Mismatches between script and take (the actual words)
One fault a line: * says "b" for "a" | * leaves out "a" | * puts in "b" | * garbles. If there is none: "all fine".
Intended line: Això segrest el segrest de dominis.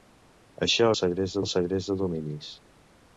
all fine